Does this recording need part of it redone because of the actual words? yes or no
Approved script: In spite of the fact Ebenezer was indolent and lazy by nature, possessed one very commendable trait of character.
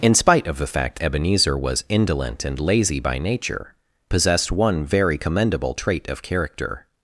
no